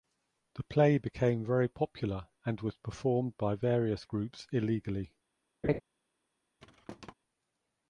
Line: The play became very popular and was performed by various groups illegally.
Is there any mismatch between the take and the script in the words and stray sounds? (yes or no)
yes